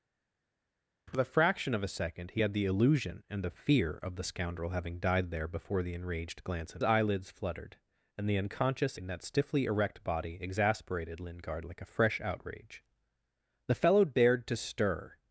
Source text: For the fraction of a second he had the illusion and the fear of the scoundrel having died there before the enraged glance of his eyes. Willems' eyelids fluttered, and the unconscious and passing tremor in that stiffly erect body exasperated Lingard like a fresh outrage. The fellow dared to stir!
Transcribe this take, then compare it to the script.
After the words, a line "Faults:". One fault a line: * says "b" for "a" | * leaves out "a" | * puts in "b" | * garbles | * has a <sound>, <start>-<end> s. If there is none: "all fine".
For the fraction of a second he had the illusion and the fear of the scoundrel having died there before the enraged glance of' eyelids fluttered, and the unconscious in that stiffly erect body exasperated Lingard like a fresh outrage. The fellow dared to stir!
Faults:
* leaves out "his eyes Willems"
* leaves out "and passing tremor"